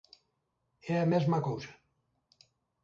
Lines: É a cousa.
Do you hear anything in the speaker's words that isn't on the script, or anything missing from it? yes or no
yes